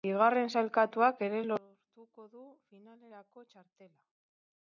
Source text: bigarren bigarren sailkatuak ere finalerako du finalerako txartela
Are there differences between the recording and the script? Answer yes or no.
yes